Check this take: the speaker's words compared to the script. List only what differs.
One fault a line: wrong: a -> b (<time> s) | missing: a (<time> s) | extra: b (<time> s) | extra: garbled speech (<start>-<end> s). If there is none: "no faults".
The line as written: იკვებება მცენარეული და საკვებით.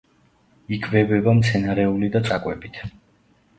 no faults